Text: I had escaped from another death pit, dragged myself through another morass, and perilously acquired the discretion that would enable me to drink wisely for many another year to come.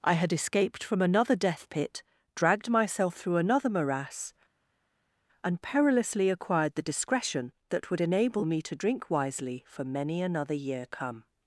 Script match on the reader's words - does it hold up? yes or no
no